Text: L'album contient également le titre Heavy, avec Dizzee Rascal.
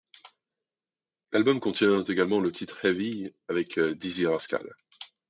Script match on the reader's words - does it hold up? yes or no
yes